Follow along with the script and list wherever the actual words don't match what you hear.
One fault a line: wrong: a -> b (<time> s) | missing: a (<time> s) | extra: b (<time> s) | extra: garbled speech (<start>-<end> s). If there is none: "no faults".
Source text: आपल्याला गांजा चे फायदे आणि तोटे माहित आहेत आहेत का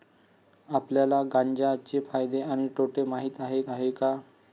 no faults